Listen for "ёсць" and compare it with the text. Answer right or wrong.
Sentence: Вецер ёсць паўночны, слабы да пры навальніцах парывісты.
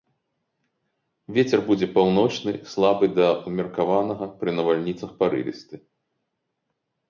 wrong